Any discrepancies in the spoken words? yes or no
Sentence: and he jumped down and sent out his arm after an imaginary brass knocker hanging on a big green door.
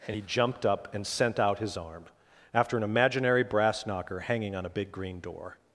yes